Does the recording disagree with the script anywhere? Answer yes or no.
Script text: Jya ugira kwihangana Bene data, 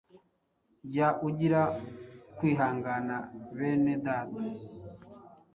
no